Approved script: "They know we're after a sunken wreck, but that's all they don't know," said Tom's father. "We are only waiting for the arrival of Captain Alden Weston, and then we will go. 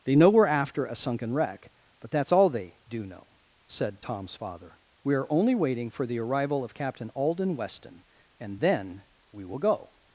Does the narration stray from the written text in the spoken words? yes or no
yes